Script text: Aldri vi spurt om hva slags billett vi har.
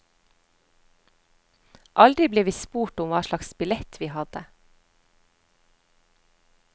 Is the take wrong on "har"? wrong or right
wrong